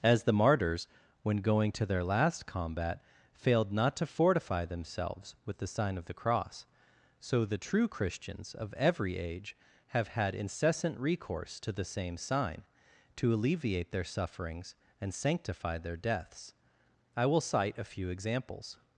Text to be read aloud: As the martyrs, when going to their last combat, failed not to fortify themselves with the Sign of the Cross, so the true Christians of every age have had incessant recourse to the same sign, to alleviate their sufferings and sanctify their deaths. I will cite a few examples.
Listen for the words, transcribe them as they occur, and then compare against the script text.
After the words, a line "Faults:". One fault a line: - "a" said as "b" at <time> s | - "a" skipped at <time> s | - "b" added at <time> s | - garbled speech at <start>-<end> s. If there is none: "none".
As the martyrs, when going to their last combat, failed not to fortify themselves with the Sign of the Cross, so the true Christians of every age have had incessant recourse to the same sign, to alleviate their sufferings and sanctify their deaths. I will cite a few examples.
Faults:
none